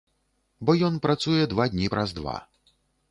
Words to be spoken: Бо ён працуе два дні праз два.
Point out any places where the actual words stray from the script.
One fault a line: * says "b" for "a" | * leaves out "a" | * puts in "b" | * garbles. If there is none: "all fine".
all fine